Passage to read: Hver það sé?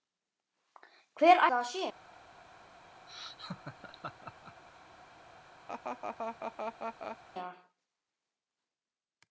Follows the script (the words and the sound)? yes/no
no